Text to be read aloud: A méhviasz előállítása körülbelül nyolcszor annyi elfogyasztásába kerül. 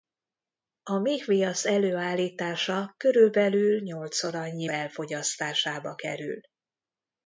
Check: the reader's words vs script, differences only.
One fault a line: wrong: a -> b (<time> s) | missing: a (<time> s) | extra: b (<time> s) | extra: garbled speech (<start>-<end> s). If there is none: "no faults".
no faults